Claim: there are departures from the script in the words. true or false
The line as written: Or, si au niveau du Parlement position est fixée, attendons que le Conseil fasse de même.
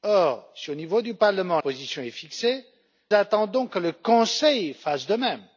false